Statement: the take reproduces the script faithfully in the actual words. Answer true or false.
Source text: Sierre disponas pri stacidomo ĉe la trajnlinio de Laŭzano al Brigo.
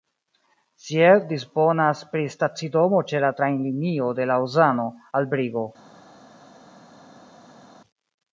true